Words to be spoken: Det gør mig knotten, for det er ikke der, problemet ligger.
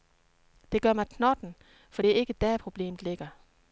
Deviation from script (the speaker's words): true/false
false